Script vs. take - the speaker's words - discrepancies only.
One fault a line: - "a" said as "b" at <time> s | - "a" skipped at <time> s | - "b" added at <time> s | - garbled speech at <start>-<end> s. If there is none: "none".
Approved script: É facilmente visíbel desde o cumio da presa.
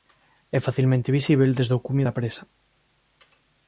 none